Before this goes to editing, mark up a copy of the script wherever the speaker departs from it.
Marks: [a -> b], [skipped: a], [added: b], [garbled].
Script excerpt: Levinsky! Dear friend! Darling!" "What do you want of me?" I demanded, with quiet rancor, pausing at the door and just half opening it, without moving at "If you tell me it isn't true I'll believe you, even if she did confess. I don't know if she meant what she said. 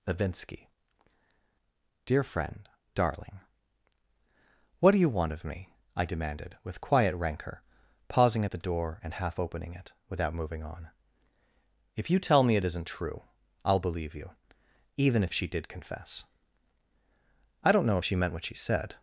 Levinsky! Dear friend! Darling!" "What do you want of me?" I demanded, with quiet rancor, pausing at the door and [skipped: just] half opening it, without moving [at -> on] "If you tell me it isn't true I'll believe you, even if she did confess. I don't know if she meant what she said.